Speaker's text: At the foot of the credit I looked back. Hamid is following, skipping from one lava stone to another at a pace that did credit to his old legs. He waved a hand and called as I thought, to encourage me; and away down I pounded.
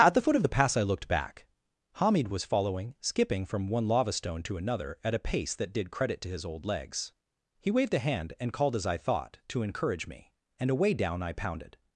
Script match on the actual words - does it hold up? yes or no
no